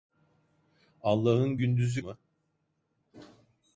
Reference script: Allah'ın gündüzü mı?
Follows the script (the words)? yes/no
yes